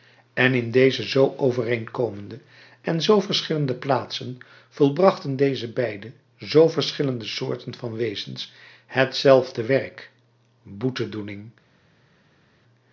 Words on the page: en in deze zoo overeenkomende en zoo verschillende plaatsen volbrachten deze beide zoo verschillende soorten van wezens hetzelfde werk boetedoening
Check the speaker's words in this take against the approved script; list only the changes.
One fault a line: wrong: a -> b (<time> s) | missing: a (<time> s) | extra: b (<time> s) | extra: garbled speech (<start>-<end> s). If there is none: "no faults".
no faults